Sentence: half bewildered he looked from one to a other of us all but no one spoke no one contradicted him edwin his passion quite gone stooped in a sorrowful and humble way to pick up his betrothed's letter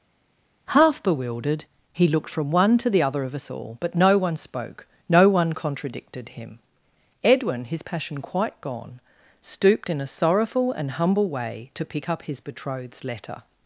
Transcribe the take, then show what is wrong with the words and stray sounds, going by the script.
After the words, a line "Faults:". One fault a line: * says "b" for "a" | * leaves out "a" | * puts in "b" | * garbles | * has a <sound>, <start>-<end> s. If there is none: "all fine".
half bewildered he looked from one to the other of us all but no one spoke no one contradicted him edwin his passion quite gone stooped in a sorrowful and humble way to pick up his betrothed's letter
Faults:
* says "the" for "a"